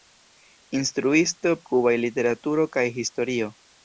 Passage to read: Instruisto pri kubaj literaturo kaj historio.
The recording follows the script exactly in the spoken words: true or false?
false